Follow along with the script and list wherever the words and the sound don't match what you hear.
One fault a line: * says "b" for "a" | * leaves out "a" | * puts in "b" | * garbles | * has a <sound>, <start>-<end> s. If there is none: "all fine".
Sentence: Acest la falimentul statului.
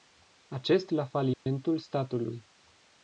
* has a dropout, 1.3-1.5 s